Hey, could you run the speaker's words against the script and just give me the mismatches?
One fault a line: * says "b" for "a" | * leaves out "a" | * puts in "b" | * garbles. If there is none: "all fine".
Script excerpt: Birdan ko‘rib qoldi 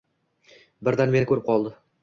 * puts in "meni"